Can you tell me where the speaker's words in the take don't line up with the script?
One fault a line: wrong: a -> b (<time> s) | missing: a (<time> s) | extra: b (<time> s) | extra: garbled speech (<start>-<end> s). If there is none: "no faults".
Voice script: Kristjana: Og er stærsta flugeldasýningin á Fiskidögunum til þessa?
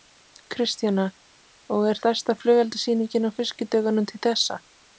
no faults